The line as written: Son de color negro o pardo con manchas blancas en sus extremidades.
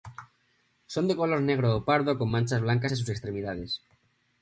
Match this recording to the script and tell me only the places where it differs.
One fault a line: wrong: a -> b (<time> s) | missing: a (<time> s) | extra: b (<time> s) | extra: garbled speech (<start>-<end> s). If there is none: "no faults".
no faults